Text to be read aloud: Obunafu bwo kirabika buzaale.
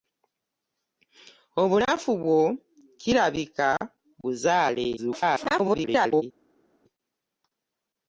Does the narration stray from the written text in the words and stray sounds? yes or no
yes